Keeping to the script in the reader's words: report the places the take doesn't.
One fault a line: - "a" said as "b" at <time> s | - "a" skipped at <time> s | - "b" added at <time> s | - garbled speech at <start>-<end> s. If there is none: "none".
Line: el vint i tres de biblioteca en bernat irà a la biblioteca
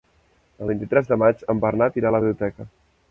- "biblioteca" said as "maig" at 1.2 s